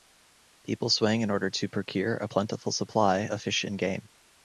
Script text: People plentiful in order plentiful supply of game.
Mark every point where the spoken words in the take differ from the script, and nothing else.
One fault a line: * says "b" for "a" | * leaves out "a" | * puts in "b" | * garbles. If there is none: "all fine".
* says "swing" for "plentiful"
* puts in "to procure a"
* puts in "fish and"